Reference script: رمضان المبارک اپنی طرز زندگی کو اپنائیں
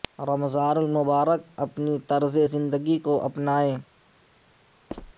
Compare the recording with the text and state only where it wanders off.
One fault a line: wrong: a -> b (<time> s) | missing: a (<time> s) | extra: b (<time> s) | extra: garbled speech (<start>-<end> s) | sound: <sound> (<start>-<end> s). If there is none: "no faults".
sound: squeak (4.9-5.1 s)